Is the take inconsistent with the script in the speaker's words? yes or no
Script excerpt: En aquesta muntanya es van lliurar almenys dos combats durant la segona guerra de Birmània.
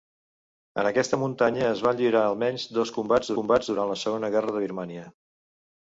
yes